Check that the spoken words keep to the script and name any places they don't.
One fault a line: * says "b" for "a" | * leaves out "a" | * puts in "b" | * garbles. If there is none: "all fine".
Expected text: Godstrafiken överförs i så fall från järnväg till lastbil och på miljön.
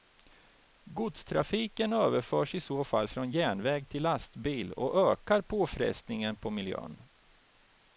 * puts in "ökar påfrestningen"